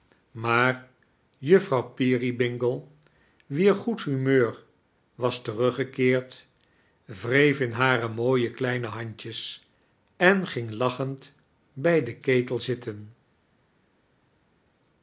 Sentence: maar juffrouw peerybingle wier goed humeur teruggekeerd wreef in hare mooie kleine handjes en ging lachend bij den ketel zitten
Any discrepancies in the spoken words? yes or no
yes